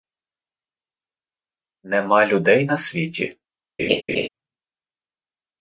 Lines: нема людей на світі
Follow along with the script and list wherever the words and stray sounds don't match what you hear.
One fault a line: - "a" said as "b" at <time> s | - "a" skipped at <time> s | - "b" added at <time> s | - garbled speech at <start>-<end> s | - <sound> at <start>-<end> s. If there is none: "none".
- laugh at 3.8-4.3 s